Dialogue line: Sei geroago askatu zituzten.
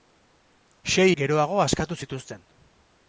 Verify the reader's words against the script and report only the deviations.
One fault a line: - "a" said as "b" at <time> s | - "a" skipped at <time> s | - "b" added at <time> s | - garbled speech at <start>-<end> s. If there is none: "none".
none